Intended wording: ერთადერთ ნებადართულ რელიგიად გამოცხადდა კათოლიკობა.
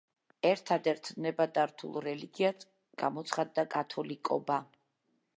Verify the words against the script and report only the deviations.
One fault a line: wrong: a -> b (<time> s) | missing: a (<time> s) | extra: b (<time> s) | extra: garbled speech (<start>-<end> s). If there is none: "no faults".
no faults